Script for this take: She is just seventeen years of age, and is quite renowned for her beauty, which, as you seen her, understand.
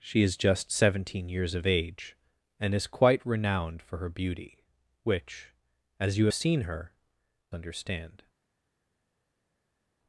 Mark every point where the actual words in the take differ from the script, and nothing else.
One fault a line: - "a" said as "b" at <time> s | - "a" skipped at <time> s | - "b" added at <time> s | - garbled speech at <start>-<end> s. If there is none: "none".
none